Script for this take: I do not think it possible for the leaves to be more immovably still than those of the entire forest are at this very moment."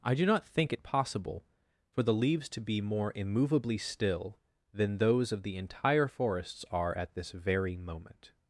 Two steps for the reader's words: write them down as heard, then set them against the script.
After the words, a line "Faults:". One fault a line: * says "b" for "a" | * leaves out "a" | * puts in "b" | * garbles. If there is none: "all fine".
I do not think it possible for the leaves to be more immovably still than those of the entire forests are at this very moment."
Faults:
* says "forests" for "forest"